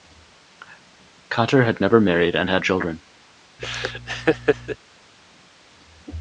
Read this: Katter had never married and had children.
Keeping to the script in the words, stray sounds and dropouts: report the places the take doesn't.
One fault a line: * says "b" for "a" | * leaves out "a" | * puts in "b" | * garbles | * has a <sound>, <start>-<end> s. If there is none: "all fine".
* has a laugh, 3.6-4.8 s